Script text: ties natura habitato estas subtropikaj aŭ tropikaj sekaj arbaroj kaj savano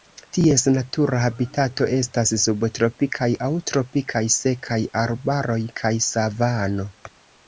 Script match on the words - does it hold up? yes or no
yes